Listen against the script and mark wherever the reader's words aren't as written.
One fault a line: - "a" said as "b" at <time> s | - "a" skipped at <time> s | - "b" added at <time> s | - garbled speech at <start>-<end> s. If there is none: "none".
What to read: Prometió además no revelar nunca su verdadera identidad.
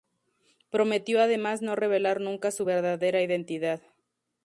none